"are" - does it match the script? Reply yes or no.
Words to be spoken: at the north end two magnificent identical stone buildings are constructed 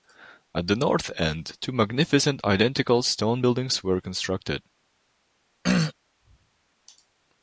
no